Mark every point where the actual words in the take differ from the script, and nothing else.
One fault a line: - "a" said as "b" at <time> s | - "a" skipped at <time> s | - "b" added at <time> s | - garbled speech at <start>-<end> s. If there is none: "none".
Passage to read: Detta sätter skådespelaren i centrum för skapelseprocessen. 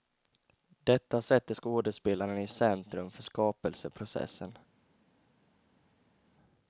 none